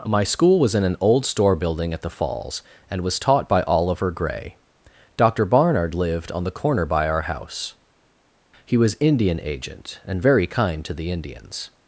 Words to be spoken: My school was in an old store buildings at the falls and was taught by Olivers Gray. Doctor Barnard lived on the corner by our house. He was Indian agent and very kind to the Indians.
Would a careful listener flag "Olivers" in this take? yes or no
yes